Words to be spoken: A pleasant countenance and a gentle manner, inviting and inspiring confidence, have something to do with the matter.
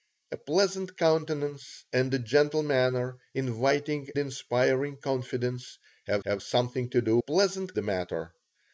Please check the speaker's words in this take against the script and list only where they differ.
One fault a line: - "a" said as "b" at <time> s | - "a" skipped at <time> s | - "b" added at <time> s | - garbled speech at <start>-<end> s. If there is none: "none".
- "and" skipped at 4.1 s
- "have" added at 6.2 s
- "with" said as "pleasant" at 7.2 s